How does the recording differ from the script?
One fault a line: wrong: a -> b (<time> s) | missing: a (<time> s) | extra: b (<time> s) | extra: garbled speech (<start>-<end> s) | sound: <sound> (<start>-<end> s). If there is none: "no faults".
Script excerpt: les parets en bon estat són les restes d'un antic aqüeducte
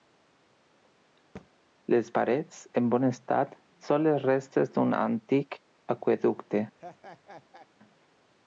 sound: thud (1.4-1.5 s)
sound: laugh (6.8-7.7 s)